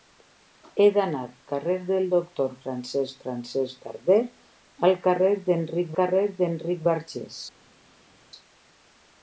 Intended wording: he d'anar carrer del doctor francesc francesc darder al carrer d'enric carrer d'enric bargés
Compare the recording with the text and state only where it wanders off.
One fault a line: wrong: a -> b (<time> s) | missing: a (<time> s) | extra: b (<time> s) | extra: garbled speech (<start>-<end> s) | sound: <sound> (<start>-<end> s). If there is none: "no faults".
no faults